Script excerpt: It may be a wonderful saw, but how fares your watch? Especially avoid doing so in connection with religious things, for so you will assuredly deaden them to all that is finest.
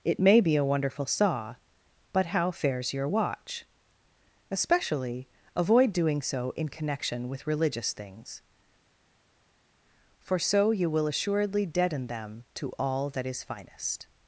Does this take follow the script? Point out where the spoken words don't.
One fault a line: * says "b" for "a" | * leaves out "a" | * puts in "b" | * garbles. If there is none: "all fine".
all fine